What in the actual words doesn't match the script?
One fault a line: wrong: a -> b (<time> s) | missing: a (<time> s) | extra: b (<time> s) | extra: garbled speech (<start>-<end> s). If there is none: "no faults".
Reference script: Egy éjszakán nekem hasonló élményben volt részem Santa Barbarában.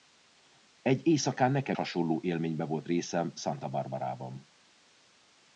no faults